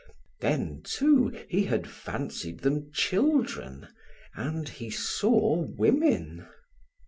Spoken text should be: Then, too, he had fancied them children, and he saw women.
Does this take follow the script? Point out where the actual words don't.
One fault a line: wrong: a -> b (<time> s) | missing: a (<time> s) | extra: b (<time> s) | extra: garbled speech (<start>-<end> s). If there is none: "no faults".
no faults